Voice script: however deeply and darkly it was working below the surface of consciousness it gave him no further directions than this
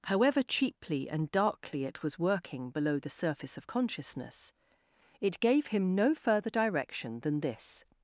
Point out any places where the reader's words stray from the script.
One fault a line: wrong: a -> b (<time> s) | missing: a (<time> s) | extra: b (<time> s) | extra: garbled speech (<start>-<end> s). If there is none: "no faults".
wrong: deeply -> cheaply (0.4 s)
wrong: directions -> direction (6.5 s)